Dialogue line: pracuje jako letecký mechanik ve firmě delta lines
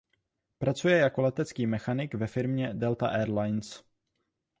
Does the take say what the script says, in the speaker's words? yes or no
no